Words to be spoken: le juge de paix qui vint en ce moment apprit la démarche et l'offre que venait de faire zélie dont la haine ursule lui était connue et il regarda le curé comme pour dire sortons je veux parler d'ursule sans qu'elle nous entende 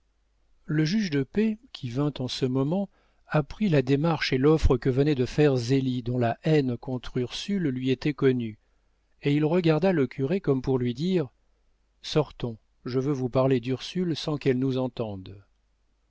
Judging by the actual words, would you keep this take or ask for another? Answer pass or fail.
fail